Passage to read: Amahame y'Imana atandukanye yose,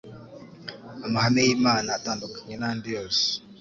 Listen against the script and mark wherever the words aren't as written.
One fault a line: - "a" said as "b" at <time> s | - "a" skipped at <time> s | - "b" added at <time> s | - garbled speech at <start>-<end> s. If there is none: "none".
- "n'andi" added at 2.6 s